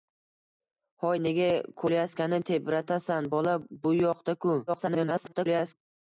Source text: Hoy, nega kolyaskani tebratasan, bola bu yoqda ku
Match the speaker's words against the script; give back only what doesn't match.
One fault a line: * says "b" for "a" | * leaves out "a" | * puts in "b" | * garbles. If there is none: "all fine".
* garbles